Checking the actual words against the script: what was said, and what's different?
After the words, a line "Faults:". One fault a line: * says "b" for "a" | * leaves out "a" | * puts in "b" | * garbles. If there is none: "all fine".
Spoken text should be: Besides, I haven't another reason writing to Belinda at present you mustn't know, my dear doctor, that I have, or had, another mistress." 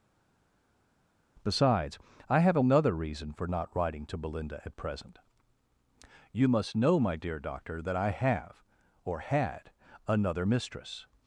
Besides, I have another reason for not writing to Belinda at present you must know, my dear doctor, that I have, or had, another mistress."
Faults:
* says "have" for "haven't"
* puts in "for not"
* says "must" for "mustn't"